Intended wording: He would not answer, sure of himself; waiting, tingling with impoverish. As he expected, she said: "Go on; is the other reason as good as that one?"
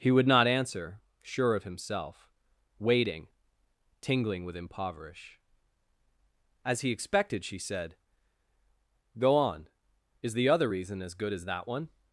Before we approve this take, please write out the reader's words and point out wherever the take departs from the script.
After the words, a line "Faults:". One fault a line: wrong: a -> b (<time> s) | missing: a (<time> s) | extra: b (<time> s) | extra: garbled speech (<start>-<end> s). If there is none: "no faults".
He would not answer, sure of himself; waiting, tingling with impoverish. As he expected, she said: "Go on; is the other reason as good as that one?"
Faults:
no faults